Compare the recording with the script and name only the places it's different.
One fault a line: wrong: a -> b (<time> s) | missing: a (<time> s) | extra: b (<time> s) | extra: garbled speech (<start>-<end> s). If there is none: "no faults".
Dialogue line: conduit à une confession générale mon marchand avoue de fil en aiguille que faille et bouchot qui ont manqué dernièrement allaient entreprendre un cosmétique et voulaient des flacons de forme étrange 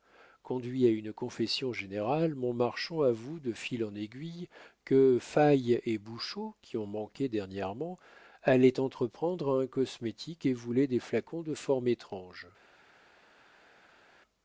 no faults